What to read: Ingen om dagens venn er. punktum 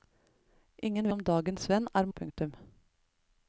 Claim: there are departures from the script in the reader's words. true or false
false